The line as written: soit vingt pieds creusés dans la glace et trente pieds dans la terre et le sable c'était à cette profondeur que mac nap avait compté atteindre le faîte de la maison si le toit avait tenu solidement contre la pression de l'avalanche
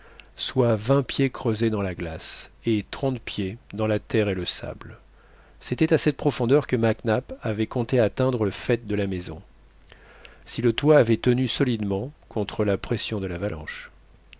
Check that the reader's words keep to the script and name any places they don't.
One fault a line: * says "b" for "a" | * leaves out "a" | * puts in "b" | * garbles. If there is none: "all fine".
all fine